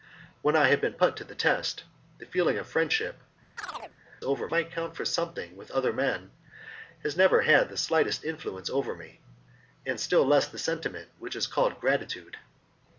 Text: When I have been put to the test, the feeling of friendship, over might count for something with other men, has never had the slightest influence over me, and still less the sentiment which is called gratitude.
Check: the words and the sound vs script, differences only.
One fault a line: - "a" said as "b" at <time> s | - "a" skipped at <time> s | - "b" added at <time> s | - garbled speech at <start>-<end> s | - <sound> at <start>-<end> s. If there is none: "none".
- chirp at 3.6-4.0 s